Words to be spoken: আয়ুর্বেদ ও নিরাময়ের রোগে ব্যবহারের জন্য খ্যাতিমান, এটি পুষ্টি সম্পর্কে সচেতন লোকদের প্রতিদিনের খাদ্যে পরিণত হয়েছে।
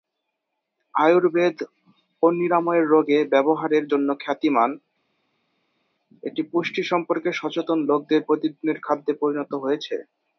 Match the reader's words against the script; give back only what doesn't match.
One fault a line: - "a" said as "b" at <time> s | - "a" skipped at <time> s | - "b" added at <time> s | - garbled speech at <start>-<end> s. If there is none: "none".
none